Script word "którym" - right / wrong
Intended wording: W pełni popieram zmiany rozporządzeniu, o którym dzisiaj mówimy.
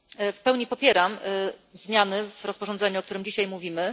right